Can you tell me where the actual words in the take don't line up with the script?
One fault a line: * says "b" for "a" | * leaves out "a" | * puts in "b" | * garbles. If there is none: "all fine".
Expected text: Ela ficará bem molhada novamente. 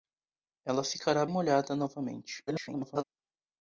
* leaves out "bem"
* garbles